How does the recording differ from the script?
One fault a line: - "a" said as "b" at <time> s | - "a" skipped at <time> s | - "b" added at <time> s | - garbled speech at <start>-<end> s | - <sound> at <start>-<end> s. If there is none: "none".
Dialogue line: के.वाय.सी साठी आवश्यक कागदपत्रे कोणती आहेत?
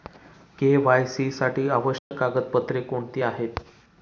- dropout at 2.0-2.1 s